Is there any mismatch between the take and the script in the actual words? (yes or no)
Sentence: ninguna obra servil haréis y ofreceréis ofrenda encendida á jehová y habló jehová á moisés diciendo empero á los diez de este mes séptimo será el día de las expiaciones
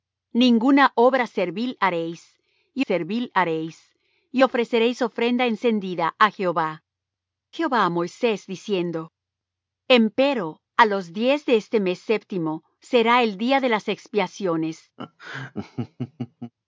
yes